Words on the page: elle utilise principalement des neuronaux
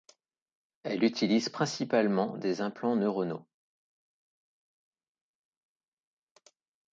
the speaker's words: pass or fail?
fail